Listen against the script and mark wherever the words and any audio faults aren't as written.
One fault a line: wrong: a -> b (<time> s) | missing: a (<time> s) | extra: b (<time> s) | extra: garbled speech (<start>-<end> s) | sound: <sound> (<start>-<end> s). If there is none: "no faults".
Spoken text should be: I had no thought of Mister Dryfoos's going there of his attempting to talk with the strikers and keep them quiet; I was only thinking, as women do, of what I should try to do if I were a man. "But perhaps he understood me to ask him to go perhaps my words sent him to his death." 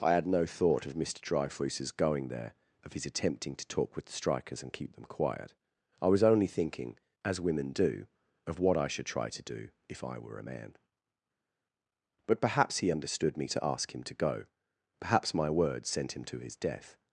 no faults